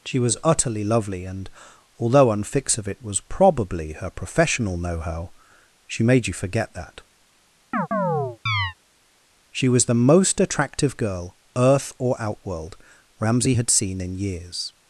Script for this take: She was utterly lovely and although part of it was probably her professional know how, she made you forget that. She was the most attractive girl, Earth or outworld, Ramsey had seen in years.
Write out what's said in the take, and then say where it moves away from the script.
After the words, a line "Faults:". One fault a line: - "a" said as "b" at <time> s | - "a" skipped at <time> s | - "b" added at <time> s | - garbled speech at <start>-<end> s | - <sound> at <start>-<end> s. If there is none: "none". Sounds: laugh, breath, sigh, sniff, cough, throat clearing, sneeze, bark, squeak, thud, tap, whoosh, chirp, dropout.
She was utterly lovely and although unfix of it was probably her professional know how, she made you forget that. She was the most attractive girl, Earth or outworld, Ramsey had seen in years.
Faults:
- "part" said as "unfix" at 2.3 s
- chirp at 7.7-8.7 s